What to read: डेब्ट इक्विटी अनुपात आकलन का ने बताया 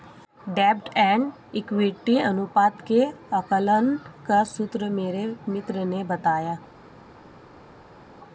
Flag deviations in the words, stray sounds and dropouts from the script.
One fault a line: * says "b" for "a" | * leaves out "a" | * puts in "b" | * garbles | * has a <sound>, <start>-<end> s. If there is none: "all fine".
* puts in "एंड"
* puts in "के"
* puts in "सूत्र मेरे मित्र"